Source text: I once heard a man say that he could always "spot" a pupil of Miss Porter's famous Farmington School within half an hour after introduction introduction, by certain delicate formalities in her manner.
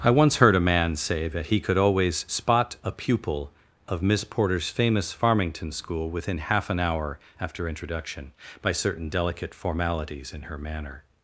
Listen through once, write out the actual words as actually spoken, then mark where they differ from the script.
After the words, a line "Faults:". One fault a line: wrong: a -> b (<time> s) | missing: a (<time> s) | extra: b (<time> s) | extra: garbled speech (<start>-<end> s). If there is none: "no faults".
I once heard a man say that he could always "spot" a pupil of Miss Porter's famous Farmington School within half an hour after introduction, by certain delicate formalities in her manner.
Faults:
missing: introduction (8.3 s)